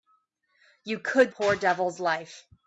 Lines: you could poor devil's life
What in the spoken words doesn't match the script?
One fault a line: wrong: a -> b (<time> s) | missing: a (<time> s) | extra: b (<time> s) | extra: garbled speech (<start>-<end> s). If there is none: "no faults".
no faults